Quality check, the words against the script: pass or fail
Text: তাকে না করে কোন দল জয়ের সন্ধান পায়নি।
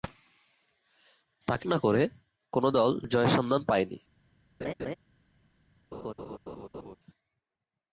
pass